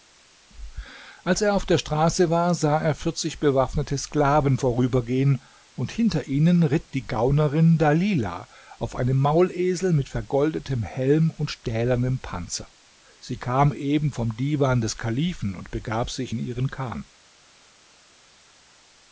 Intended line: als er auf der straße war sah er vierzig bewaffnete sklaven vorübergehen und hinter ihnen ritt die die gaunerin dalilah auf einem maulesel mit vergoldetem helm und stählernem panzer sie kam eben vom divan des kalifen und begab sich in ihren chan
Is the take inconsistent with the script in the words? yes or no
yes